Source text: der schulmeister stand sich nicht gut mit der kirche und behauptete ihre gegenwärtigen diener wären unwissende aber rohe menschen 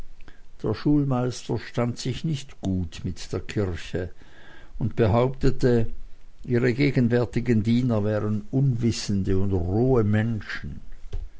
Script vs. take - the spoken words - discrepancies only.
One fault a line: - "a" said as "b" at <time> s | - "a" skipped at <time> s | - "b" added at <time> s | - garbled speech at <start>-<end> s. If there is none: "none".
- "aber" said as "und" at 9.4 s